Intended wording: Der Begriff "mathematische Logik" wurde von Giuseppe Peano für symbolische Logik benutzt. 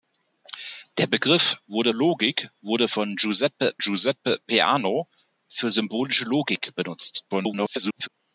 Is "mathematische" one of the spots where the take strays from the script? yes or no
yes